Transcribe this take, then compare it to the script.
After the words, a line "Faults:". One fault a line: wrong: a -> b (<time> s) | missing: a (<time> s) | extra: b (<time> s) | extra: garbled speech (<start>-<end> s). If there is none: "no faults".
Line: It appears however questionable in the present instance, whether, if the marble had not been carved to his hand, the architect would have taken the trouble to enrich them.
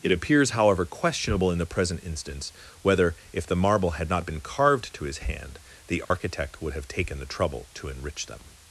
It appears however questionable in the present instance, whether, if the marble had not been carved to his hand, the architect would have taken the trouble to enrich them.
Faults:
no faults